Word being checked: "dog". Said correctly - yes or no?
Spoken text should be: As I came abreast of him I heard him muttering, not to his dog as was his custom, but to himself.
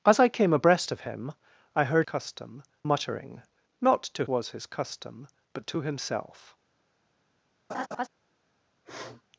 no